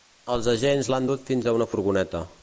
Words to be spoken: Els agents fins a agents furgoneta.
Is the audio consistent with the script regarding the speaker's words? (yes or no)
no